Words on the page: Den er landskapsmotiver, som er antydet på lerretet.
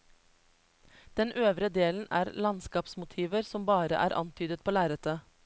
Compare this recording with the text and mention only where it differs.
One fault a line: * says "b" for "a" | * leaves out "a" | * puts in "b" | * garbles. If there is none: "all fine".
* puts in "øvre delen"
* puts in "bare"